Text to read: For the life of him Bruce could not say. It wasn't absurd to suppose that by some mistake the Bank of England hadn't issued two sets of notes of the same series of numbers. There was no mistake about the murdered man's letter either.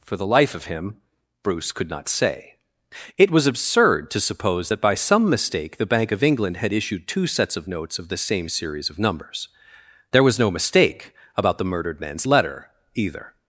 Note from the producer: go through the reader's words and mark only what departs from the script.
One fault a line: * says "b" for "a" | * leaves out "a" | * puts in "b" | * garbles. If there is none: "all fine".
* says "was" for "wasn't"
* says "had" for "hadn't"